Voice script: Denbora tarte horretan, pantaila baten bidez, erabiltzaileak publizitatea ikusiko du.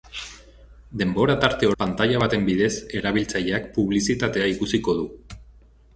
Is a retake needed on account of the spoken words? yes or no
yes